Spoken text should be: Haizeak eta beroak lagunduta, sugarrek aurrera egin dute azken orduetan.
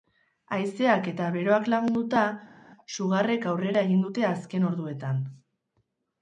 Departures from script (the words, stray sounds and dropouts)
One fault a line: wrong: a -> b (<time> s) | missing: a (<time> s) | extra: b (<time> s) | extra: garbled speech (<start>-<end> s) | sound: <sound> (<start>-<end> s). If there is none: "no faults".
no faults